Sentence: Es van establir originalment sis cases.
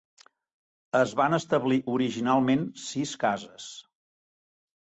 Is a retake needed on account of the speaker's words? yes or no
no